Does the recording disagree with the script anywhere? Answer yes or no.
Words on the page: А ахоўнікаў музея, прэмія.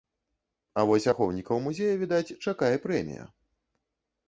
yes